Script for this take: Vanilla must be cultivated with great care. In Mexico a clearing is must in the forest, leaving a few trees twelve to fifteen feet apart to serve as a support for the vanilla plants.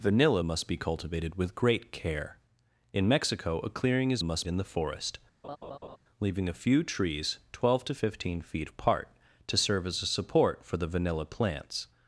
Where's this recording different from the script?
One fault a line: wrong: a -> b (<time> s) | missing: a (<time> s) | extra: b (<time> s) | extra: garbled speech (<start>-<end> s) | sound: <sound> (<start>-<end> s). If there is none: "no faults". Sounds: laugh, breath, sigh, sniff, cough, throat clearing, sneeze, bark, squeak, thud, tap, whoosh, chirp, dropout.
sound: laugh (5.4-6.0 s)